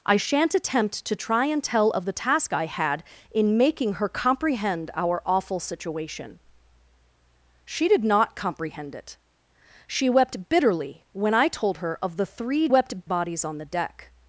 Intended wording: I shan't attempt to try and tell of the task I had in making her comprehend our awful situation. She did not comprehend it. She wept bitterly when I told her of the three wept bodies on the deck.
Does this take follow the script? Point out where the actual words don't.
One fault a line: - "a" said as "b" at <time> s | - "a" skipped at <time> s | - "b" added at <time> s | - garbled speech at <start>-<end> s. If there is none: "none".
none